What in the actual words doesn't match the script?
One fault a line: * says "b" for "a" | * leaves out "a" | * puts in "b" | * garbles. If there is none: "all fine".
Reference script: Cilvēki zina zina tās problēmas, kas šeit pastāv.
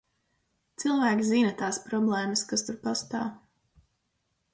* leaves out "zina"
* says "tur" for "šeit"